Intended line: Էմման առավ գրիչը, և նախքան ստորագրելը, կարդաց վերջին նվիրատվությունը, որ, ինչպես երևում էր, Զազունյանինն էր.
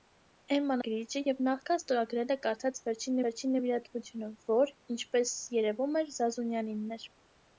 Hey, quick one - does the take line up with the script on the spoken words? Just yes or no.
no